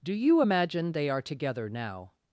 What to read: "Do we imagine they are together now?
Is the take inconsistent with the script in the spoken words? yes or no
yes